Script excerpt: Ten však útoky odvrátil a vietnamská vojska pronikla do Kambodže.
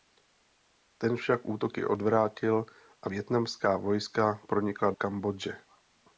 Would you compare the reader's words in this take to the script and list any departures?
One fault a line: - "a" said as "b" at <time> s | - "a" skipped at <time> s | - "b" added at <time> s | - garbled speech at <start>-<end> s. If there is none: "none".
- "do" skipped at 4.9 s